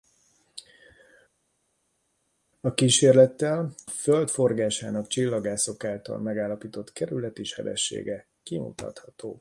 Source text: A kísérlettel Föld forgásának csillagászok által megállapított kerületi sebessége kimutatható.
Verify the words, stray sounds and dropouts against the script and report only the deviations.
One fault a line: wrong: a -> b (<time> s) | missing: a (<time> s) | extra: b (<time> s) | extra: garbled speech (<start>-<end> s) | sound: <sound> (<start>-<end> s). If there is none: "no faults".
no faults